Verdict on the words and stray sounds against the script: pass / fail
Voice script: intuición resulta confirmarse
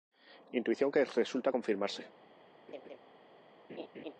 fail